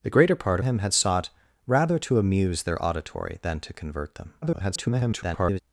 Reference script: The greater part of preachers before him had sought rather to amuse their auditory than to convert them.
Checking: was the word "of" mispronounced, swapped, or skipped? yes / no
yes